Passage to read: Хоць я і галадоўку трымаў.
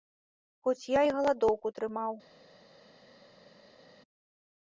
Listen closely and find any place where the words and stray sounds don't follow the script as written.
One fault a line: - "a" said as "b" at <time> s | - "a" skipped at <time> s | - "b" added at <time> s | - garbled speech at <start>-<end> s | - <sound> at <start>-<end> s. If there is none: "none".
none